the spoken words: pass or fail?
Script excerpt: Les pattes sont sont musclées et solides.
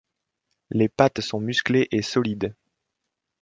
fail